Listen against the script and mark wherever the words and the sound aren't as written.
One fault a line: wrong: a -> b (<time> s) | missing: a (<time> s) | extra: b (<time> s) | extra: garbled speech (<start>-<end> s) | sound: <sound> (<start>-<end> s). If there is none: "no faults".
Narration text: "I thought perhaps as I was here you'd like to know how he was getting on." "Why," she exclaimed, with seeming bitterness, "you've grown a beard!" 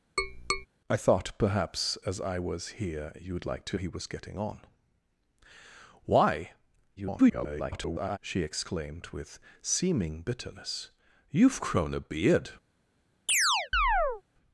sound: tap (0.2-0.7 s)
missing: know how (3.8 s)
extra: garbled speech (7.0-8.2 s)
sound: chirp (13.3-14.2 s)